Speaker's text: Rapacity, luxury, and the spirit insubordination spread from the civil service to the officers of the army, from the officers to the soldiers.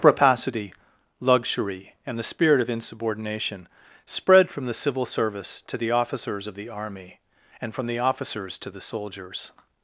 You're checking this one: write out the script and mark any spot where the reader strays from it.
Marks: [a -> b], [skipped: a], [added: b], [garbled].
Rapacity, luxury, and the spirit [added: of] insubordination spread from the civil service to the officers of the army, [added: and] from the officers to the soldiers.